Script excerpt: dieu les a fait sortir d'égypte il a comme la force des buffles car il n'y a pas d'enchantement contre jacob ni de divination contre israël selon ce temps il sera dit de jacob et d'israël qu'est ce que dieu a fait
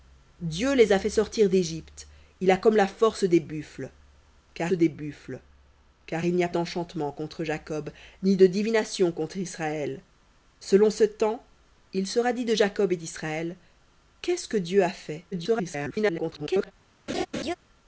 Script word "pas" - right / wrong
wrong